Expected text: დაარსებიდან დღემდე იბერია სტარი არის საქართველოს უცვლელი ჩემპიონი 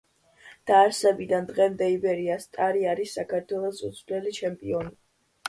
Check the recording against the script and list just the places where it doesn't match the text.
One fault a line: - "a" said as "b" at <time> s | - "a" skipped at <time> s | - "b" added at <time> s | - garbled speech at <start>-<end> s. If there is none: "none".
none